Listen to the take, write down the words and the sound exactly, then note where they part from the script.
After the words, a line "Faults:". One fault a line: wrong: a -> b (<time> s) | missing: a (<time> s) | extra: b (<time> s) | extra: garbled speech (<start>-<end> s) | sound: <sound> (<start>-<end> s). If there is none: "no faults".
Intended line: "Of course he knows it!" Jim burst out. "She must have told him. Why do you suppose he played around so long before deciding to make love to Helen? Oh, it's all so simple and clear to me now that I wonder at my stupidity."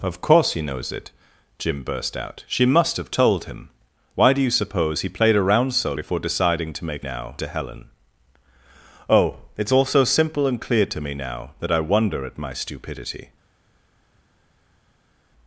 "Of course he knows it!" Jim burst out. "She must have told him. Why do you suppose he played around so before deciding to make now to Helen? Oh, it's all so simple and clear to me now that I wonder at my stupidity."
Faults:
missing: long (5.9 s)
wrong: love -> now (7.0 s)